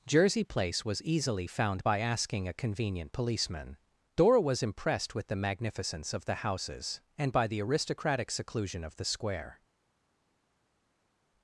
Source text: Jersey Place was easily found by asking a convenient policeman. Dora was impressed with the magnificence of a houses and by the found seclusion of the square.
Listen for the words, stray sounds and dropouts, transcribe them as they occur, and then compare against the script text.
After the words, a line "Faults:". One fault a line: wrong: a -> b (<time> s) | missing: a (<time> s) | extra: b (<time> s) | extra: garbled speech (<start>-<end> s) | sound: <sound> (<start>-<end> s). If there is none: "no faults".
Jersey Place was easily found by asking a convenient policeman. Dora was impressed with the magnificence of the houses and by the aristocratic seclusion of the square.
Faults:
wrong: a -> the (6.2 s)
wrong: found -> aristocratic (7.6 s)